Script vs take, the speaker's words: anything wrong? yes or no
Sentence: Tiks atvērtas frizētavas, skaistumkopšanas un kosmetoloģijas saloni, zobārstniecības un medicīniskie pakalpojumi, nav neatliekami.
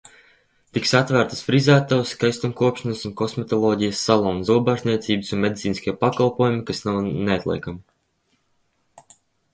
yes